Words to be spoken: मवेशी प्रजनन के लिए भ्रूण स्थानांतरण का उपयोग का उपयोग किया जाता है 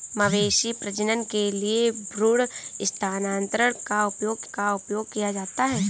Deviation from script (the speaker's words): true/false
false